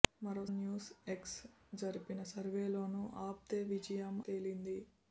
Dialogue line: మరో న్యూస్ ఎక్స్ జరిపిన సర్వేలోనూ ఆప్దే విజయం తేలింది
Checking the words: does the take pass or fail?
pass